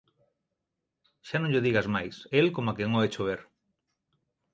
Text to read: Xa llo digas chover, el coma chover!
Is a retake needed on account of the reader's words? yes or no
yes